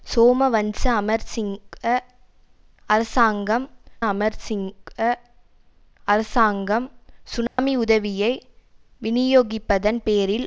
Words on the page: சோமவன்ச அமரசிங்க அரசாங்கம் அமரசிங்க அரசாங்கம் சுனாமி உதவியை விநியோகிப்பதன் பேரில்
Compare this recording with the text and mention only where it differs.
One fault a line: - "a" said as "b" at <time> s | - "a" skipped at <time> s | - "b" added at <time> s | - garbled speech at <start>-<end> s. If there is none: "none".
none